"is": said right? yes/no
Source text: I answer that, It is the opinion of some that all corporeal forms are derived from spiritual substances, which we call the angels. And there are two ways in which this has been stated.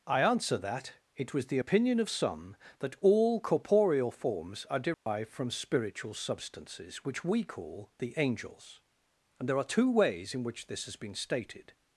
no